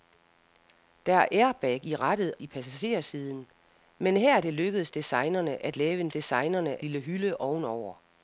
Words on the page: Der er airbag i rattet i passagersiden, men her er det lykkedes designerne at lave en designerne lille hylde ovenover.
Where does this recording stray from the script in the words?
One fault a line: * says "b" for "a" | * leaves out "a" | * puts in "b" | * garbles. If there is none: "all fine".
all fine